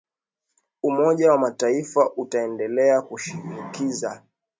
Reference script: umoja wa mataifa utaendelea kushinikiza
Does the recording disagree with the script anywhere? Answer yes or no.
no